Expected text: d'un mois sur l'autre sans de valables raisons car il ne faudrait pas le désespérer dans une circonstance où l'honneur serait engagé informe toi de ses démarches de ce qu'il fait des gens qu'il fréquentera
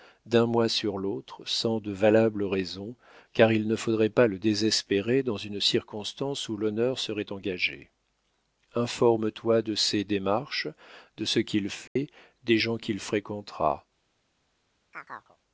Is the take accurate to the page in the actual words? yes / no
yes